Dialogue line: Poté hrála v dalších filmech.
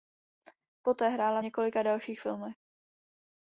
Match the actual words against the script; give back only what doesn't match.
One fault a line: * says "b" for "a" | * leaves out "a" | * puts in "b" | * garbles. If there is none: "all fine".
* puts in "několika"